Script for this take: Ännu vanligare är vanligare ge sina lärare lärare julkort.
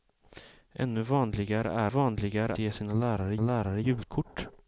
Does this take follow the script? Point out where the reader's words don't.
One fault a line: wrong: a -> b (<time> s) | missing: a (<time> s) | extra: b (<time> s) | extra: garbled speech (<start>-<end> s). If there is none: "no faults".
no faults